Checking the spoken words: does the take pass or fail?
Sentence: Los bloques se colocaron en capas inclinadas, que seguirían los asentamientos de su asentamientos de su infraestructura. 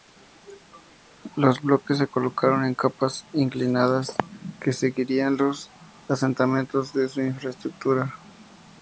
fail